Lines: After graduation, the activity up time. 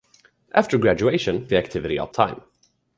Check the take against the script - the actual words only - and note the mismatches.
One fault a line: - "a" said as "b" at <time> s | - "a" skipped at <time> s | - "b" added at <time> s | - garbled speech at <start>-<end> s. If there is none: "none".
none